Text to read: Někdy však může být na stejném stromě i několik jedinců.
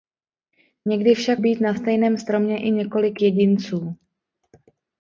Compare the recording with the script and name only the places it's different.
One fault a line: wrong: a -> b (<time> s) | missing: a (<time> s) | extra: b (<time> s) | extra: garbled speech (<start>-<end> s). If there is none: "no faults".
missing: může (1.4 s)